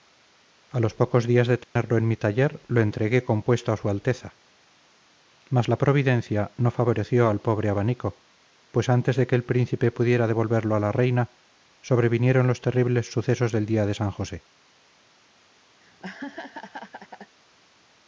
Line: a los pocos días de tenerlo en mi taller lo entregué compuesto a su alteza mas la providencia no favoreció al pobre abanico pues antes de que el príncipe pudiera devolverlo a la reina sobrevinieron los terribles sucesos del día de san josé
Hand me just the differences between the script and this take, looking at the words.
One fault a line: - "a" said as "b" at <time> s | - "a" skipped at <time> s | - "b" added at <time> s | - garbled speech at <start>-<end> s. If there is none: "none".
none